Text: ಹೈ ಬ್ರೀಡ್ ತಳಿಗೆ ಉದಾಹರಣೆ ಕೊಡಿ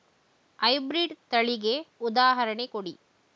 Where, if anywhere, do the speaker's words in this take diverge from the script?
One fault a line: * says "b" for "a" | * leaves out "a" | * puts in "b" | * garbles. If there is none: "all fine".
all fine